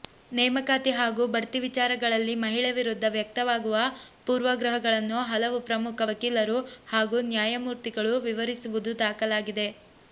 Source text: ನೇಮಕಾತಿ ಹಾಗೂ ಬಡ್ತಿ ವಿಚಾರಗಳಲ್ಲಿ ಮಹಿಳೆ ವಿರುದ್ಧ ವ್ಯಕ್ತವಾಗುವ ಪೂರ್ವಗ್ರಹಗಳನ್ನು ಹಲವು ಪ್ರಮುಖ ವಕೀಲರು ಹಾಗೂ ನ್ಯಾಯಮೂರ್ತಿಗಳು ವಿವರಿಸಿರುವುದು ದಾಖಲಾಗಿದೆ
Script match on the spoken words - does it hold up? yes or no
yes